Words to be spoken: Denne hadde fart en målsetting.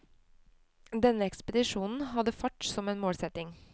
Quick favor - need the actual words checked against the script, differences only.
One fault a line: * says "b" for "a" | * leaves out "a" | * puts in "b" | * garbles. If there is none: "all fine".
* puts in "ekspedisjonen"
* puts in "som"